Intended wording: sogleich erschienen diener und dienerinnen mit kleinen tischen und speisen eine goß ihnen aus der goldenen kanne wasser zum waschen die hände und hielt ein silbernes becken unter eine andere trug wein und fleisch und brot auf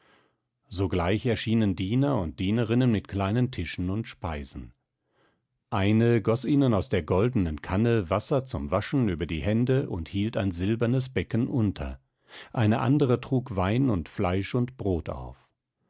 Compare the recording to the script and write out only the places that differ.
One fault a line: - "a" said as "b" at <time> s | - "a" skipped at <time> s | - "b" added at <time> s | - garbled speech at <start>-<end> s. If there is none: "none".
- "über" added at 9.1 s